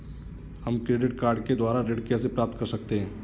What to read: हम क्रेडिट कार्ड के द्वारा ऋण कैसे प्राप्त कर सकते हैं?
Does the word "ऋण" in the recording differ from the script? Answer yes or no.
no